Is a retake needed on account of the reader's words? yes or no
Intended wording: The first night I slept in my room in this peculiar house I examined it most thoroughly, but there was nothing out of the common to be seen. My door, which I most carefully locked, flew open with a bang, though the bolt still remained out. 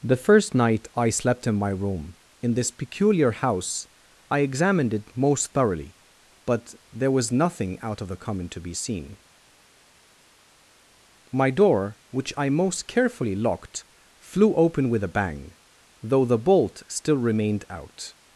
no